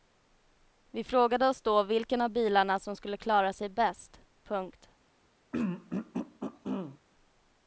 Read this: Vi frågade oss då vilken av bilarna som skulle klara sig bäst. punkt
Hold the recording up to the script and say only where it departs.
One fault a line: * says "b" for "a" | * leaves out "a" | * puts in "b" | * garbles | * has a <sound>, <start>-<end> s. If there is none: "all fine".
* has a throat clearing, 5.5-7.0 s